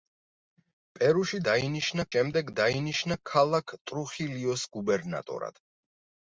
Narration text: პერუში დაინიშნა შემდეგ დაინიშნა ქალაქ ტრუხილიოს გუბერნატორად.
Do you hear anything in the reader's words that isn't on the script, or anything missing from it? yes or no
no